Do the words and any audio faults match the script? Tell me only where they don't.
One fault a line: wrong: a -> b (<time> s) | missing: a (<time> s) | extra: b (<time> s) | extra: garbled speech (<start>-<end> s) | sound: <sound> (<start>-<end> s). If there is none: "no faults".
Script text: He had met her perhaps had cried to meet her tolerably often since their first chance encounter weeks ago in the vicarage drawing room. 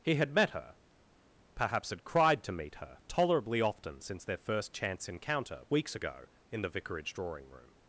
no faults